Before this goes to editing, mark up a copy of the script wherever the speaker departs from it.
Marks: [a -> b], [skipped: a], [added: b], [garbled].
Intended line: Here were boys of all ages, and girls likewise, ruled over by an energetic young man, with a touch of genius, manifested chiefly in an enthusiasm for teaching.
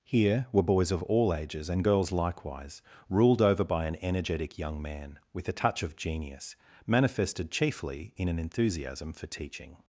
Here were boys of all ages, and girls likewise, ruled over by an energetic young man, with a touch of genius, manifested chiefly in an enthusiasm for teaching.